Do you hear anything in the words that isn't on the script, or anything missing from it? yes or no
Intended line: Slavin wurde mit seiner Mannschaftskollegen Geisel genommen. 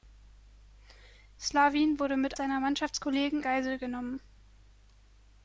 no